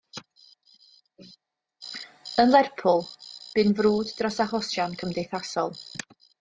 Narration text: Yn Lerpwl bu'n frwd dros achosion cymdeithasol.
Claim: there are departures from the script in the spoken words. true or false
false